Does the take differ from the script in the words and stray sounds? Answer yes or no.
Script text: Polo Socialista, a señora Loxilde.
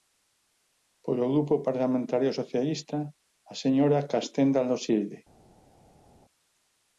yes